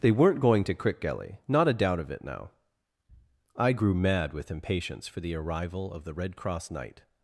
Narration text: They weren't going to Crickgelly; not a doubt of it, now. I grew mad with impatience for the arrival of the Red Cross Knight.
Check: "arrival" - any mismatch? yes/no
no